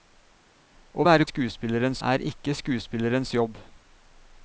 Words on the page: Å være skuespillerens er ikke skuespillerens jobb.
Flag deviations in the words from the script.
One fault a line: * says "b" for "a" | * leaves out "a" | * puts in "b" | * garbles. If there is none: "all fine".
all fine